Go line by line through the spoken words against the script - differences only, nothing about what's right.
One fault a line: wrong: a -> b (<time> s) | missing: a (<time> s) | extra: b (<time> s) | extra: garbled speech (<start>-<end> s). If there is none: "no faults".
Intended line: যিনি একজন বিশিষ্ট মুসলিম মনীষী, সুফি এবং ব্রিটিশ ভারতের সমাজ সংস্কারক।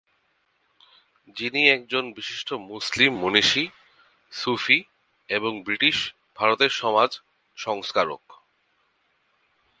no faults